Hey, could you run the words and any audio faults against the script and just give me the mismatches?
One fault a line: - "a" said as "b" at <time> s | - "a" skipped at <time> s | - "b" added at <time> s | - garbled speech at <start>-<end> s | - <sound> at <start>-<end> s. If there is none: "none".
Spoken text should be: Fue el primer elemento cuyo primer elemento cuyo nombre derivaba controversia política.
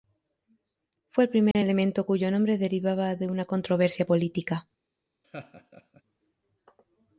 - dropout at 1.5-1.6 s
- "primer elemento cuyo nombre derivaba" said as "nombre derivaba de una" at 2.3 s
- laugh at 5.2-6.0 s